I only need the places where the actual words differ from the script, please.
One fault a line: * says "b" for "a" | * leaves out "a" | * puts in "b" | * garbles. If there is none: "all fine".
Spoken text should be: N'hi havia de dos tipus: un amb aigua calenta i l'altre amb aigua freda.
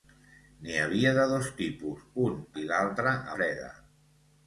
* leaves out "amb aigua calenta"
* leaves out "amb aigua"